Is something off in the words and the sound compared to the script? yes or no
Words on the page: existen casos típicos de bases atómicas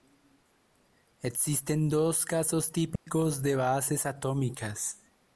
yes